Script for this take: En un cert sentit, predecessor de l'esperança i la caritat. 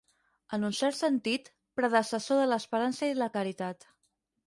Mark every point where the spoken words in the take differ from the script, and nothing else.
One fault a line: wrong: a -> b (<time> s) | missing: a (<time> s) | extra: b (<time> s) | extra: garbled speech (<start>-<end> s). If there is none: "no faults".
no faults